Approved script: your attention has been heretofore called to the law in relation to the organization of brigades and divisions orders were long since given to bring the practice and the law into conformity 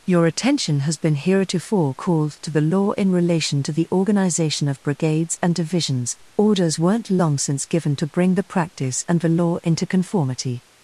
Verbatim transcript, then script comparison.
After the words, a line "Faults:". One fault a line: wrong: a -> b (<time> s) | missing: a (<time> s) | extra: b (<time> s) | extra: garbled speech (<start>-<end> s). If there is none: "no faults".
your attention has been heretofore called to the law in relation to the organization of brigades and divisions orders weren't long since given to bring the practice and the law into conformity
Faults:
wrong: were -> weren't (6.8 s)